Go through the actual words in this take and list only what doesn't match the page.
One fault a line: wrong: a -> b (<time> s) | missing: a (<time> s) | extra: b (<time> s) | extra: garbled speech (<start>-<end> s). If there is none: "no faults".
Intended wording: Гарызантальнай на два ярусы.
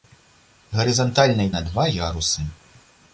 no faults